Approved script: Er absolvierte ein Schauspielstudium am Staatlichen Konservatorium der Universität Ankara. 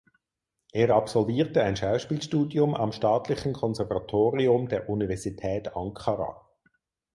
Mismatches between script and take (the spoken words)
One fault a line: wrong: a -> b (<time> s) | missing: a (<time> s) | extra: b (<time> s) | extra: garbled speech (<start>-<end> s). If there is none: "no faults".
no faults